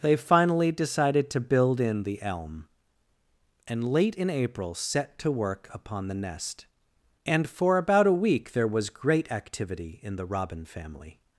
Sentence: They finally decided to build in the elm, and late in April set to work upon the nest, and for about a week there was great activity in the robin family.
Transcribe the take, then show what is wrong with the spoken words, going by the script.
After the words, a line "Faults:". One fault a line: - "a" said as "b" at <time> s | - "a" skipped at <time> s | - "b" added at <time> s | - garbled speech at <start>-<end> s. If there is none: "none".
They finally decided to build in the elm, and late in April set to work upon the nest, and for about a week there was great activity in the robin family.
Faults:
none